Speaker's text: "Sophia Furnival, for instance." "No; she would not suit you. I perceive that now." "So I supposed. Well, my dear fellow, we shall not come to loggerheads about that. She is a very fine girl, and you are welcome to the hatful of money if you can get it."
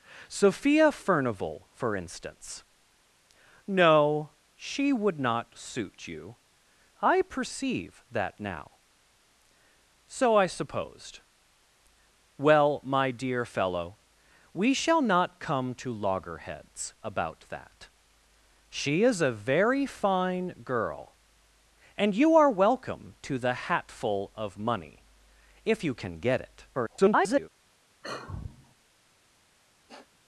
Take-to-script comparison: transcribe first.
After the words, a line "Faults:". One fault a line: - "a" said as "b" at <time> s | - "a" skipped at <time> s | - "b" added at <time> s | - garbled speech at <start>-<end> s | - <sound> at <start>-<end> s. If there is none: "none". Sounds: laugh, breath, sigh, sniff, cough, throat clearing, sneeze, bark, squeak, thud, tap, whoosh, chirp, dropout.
"Sophia Furnival, for instance." "No; she would not suit you. I perceive that now." "So I supposed. Well, my dear fellow, we shall not come to loggerheads about that. She is a very fine girl, and you are welcome to the hatful of money if you can get it." [garbled]
Faults:
- garbled speech at 26.7-27.5 s
- sigh at 28.0-28.7 s
- sniff at 29.9-30.2 s